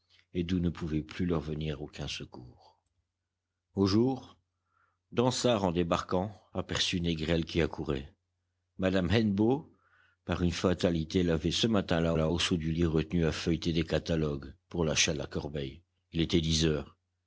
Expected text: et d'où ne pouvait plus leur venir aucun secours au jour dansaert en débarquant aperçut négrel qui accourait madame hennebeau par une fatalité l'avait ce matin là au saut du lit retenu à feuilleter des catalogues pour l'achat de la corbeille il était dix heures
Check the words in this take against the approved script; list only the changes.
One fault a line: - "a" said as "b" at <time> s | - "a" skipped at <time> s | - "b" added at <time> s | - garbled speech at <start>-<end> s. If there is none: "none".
- "là" added at 12.1 s